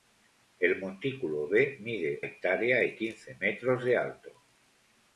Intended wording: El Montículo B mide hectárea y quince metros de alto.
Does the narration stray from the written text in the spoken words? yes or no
no